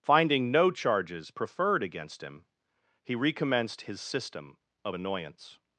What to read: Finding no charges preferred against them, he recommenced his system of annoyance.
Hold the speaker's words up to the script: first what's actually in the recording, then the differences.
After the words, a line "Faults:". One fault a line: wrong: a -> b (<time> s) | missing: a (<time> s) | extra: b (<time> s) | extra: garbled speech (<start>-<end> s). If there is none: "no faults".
Finding no charges preferred against him, he recommenced his system of annoyance.
Faults:
wrong: them -> him (2.2 s)